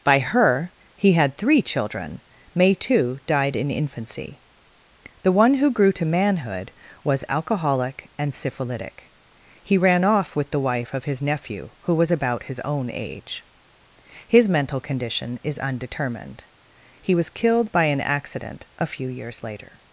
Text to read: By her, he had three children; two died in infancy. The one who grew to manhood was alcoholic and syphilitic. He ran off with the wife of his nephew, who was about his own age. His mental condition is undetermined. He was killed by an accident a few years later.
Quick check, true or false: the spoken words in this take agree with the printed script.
false